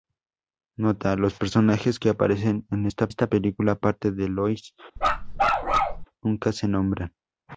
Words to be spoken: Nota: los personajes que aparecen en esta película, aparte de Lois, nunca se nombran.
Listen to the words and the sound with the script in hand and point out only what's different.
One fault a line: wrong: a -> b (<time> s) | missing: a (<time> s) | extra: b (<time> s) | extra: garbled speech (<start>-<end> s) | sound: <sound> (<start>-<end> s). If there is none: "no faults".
extra: esta (3.1 s)
sound: bark (5.0-6.1 s)